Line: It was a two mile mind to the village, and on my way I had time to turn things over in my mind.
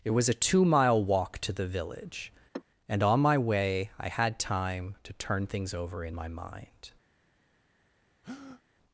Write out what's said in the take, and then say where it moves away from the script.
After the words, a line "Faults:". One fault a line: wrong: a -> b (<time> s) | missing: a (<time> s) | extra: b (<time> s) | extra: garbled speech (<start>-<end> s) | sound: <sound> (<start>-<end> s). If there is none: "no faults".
It was a two mile walk to the village, and on my way I had time to turn things over in my mind.
Faults:
wrong: mind -> walk (1.0 s)
sound: sigh (2.5-2.6 s)
sound: breath (8.2-8.6 s)